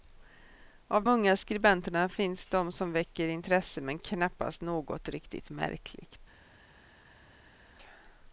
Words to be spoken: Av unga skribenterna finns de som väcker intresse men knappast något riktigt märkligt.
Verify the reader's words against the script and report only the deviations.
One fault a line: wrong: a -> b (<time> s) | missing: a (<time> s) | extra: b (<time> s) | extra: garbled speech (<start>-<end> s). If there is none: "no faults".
no faults